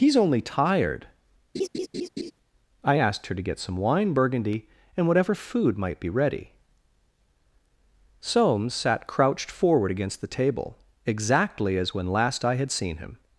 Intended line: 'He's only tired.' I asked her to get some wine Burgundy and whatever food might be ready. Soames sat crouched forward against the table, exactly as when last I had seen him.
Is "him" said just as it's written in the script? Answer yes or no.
yes